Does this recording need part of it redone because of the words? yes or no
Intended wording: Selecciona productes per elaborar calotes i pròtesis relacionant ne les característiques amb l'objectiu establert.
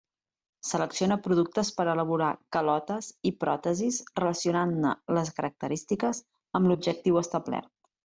no